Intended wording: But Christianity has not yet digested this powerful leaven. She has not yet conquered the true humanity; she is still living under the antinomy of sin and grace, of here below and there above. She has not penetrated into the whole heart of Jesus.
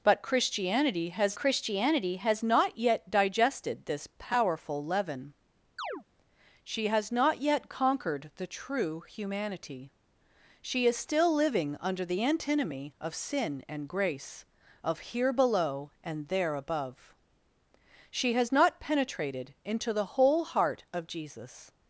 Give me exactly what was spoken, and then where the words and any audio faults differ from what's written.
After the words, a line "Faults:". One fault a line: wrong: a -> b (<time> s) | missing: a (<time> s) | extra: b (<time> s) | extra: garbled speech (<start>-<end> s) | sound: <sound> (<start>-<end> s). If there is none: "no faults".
But Christianity has Christianity has not yet digested this powerful leaven. She has not yet conquered the true humanity; she is still living under the antinomy of sin and grace, of here below and there above. She has not penetrated into the whole heart of Jesus.
Faults:
extra: Christianity has (1.4 s)
sound: chirp (5.8-6.0 s)